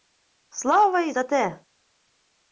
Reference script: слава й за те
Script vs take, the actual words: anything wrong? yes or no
no